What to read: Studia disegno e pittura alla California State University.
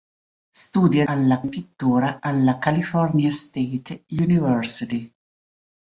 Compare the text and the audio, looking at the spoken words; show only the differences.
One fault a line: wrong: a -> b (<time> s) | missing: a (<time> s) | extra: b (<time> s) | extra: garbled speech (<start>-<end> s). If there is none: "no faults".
wrong: disegno -> alla (1.1 s)